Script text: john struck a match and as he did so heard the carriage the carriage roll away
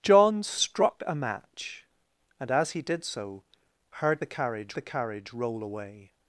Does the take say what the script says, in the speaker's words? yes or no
yes